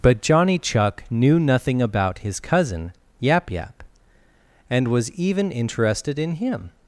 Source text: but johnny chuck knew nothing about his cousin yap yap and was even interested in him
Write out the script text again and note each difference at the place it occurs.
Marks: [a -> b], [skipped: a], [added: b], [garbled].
but johnny chuck knew nothing about his cousin yap yap and was even interested in him